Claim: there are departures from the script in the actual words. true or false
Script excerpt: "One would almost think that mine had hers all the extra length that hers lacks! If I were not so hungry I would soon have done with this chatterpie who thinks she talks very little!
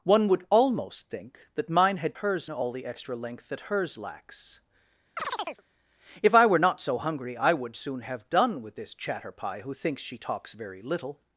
false